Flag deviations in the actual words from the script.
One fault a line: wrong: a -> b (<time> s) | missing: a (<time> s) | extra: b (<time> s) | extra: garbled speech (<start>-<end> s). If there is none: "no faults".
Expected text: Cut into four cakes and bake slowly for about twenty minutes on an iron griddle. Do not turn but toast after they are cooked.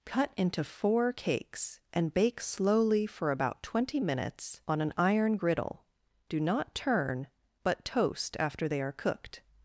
no faults